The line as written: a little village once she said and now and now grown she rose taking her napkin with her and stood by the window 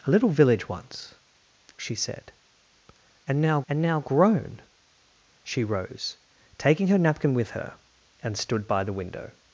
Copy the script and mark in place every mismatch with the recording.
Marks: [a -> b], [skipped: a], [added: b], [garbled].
a little village once she said and now and now grown she rose taking her napkin with her and stood by the window